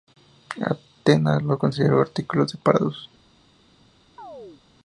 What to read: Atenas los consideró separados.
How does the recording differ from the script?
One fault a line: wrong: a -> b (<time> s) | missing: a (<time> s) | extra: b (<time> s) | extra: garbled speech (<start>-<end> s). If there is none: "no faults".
extra: artículos (2.0 s)